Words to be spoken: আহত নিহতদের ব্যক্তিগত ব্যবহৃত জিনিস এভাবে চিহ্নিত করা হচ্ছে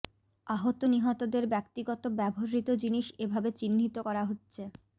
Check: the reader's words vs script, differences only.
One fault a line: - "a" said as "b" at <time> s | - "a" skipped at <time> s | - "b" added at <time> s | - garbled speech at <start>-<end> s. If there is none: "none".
none